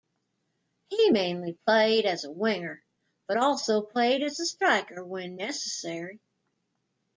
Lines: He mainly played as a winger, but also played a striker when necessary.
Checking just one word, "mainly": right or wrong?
right